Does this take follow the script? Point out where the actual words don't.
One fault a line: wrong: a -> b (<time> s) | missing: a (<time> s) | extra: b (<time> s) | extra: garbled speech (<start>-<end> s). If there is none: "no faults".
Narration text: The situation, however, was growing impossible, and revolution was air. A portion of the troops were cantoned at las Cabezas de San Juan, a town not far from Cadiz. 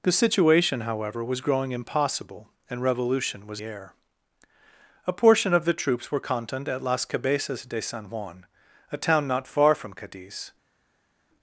no faults